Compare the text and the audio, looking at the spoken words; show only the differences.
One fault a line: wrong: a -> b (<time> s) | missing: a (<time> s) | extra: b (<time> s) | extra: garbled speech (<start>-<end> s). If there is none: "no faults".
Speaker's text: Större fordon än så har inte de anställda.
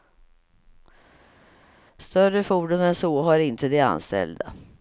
no faults